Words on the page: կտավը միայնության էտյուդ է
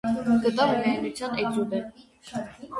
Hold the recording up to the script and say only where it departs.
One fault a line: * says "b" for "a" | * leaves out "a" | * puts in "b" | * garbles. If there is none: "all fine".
all fine